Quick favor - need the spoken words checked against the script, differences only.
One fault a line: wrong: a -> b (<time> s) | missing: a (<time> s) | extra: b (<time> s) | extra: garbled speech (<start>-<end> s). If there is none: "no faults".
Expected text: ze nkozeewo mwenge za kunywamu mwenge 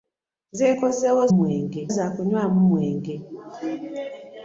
no faults